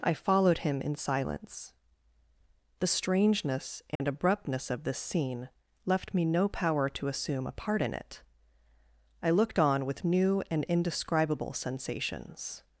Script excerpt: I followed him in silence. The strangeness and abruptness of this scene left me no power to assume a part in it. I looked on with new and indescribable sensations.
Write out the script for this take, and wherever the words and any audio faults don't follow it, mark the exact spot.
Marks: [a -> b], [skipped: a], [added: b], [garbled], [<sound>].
I followed him in silence. The strangeness and [dropout] abruptness of this scene left me no power to assume a part in it. I looked on with new and indescribable sensations.